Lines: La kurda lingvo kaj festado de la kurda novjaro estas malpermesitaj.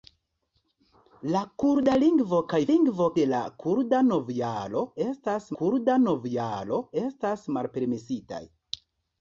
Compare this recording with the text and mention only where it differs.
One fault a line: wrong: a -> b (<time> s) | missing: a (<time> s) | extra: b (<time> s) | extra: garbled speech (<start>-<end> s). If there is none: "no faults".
wrong: festado -> lingvo (2.7 s)
extra: kurda novjaro estas (5.6 s)